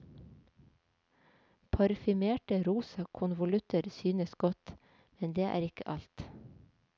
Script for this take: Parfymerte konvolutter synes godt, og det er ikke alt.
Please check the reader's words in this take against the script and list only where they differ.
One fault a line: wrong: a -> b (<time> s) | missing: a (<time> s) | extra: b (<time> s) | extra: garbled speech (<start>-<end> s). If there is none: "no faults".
extra: rosa (2.6 s)
wrong: og -> men (5.2 s)